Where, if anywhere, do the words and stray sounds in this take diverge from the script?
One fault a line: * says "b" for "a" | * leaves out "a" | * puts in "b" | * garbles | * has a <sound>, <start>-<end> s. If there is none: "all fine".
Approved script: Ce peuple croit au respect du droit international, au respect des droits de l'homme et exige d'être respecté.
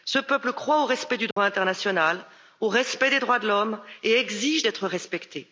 * has a dropout, 1.3-1.4 s